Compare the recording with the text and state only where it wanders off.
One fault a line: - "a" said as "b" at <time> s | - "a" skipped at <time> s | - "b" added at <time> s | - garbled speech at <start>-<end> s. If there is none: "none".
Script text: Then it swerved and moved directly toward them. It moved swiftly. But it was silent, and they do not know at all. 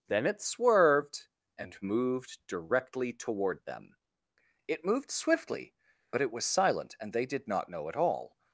- "do" said as "did" at 7.3 s